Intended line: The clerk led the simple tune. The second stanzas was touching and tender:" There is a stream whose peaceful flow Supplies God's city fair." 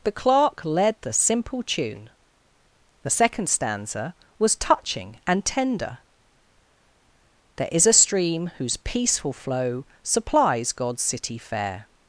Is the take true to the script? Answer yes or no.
no